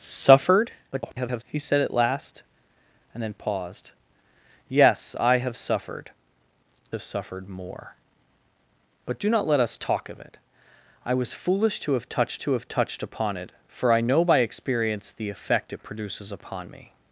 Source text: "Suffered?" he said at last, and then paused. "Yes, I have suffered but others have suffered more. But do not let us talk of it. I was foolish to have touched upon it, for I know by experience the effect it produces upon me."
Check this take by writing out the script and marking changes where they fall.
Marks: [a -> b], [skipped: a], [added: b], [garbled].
"Suffered?" [garbled] he said at last, and then paused. "Yes, I have suffered [skipped: but others] have suffered more. But do not let us talk of it. I was foolish to have touched [added: to have touched] upon it, for I know by experience the effect it produces upon me."